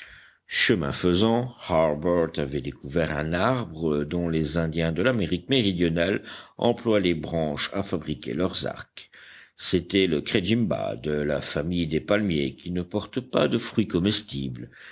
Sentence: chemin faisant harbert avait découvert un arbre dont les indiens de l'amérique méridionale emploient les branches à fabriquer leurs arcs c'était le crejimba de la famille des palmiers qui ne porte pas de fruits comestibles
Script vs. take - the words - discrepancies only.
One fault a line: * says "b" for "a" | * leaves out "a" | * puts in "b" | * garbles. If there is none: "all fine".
all fine